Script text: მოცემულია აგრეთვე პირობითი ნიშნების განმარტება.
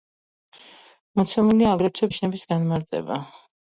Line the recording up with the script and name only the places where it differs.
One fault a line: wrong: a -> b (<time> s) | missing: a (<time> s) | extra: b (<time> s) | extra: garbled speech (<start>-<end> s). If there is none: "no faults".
missing: პირობითი (2.1 s)